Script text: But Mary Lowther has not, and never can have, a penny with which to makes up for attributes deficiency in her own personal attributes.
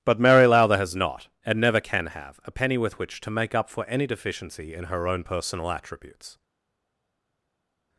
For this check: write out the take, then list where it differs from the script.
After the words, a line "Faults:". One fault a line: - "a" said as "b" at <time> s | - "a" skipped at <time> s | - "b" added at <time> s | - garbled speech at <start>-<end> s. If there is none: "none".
But Mary Lowther has not, and never can have, a penny with which to make up for any deficiency in her own personal attributes.
Faults:
- "makes" said as "make" at 3.3 s
- "attributes" said as "any" at 3.9 s